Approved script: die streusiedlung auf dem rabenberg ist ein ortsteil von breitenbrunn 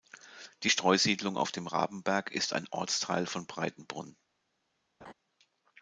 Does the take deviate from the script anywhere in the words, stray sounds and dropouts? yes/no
yes